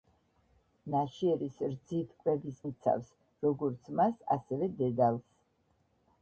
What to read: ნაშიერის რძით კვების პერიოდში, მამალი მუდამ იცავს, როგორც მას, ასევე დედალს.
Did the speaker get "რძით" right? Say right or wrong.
right